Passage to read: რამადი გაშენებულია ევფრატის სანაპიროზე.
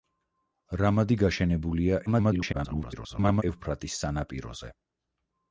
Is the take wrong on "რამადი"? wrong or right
right